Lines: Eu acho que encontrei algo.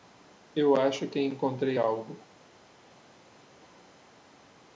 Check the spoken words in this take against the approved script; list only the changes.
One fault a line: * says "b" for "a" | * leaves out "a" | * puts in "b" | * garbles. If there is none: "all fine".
all fine